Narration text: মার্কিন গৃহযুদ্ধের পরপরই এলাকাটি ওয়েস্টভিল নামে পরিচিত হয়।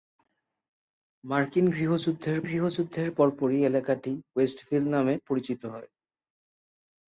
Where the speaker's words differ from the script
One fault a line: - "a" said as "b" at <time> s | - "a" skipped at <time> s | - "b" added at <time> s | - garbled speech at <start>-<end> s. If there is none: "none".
- "গৃহযুদ্ধের" added at 2.4 s